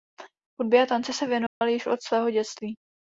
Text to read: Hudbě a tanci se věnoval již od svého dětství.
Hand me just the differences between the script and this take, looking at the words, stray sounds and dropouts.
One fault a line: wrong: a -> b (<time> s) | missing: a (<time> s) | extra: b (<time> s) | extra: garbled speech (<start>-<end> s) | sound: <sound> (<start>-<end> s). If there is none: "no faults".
sound: dropout (1.5-1.6 s)